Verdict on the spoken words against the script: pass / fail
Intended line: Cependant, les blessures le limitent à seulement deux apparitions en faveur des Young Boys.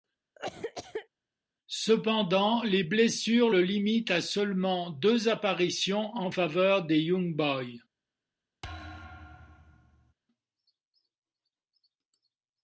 pass